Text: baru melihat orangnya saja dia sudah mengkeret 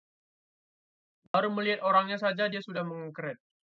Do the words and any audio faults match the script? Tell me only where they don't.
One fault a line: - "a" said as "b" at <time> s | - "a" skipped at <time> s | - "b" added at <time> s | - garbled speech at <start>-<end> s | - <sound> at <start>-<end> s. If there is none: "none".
- dropout at 1.3-1.3 s